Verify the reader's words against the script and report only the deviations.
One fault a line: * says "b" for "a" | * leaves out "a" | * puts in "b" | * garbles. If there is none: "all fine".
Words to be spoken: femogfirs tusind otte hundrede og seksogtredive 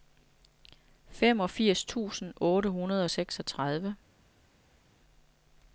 all fine